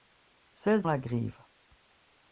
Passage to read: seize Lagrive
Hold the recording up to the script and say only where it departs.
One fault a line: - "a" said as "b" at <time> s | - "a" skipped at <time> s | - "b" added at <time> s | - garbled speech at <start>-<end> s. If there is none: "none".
none